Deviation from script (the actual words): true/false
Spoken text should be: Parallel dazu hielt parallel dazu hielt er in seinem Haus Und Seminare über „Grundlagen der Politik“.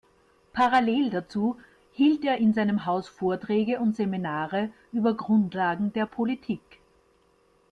true